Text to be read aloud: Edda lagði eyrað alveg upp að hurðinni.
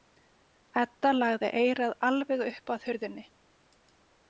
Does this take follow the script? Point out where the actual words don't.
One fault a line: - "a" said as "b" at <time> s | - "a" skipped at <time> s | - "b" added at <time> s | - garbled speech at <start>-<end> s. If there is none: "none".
none